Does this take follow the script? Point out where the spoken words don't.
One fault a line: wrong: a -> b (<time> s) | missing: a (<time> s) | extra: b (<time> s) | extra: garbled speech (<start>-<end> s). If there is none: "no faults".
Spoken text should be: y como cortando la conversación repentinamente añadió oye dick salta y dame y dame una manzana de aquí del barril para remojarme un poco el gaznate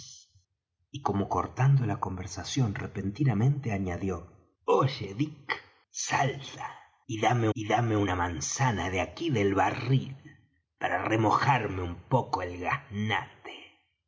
no faults